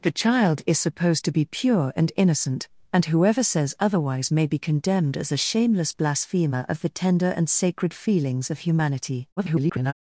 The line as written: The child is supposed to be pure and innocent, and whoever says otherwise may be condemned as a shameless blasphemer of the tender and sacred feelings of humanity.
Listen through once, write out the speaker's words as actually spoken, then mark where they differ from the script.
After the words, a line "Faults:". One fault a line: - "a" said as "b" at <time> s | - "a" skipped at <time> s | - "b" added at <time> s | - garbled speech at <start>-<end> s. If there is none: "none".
The child is supposed to be pure and innocent, and whoever says otherwise may be condemned as a shameless blasphemer of the tender and sacred feelings of humanity. [garbled]
Faults:
- garbled speech at 9.4-9.9 s